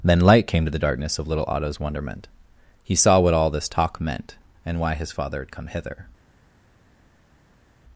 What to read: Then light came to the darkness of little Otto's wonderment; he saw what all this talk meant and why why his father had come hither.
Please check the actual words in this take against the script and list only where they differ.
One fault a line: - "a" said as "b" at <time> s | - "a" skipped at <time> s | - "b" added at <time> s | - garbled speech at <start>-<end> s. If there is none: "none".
- "why" skipped at 5.0 s